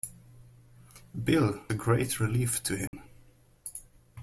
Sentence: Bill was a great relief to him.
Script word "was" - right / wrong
wrong